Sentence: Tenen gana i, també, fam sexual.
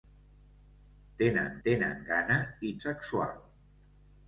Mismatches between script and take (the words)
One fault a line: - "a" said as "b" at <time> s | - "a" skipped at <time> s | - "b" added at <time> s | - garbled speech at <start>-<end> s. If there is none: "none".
- "tenen" added at 1.6 s
- "també fam" skipped at 2.7 s